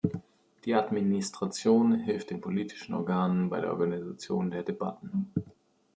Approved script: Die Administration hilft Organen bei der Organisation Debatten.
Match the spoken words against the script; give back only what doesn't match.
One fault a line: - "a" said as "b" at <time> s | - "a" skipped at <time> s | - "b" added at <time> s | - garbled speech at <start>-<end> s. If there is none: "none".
- "den politischen" added at 2.3 s
- "der" added at 4.5 s